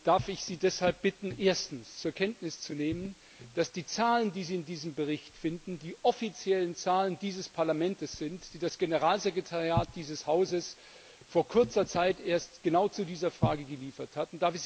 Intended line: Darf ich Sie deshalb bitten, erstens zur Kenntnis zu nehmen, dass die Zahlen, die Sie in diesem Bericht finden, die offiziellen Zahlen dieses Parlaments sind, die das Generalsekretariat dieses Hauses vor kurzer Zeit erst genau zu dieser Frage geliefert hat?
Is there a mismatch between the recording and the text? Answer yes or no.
no